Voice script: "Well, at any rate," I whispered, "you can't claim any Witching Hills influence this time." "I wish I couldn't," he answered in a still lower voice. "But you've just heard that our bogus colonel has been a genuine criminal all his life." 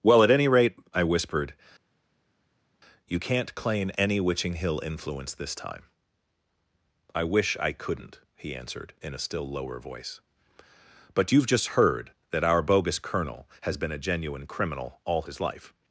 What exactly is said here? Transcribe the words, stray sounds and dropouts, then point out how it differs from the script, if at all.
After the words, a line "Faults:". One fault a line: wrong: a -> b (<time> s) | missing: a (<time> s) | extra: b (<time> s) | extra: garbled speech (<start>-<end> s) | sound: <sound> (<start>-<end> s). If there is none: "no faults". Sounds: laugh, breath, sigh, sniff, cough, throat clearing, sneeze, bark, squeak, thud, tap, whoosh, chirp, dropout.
"Well, at any rate," I whispered, "you can't claim any Witching Hill influence this time." "I wish I couldn't," he answered in a still lower voice. "But you've just heard that our bogus colonel has been a genuine criminal all his life."
Faults:
wrong: Hills -> Hill (4.5 s)